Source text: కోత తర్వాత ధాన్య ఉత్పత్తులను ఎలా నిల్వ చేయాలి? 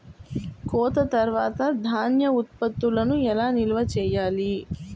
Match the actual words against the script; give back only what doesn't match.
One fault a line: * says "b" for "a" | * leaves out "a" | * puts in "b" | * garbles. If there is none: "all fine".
all fine